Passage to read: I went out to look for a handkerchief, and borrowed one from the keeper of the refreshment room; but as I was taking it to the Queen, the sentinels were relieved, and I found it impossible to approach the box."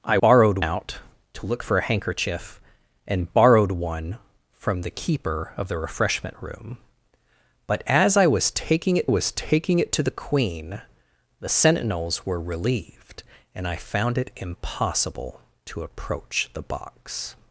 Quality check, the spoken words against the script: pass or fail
fail